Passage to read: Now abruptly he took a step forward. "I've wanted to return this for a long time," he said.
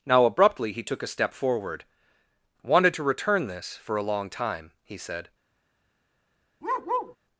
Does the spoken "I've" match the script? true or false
false